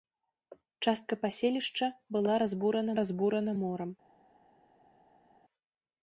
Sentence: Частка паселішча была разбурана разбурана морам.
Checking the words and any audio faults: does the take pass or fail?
pass